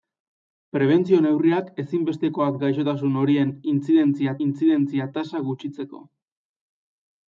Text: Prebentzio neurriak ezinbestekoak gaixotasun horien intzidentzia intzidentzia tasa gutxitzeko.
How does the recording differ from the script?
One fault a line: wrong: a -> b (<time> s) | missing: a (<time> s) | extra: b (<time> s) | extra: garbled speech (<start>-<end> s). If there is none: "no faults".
no faults